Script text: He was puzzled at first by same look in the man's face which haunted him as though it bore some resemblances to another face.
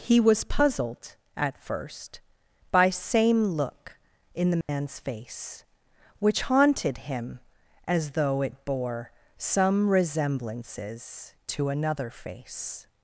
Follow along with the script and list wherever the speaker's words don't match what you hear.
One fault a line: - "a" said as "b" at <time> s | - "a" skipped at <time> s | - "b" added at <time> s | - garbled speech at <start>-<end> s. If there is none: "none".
none